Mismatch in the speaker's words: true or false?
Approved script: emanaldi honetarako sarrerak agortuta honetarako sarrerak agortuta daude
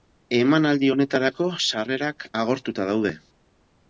true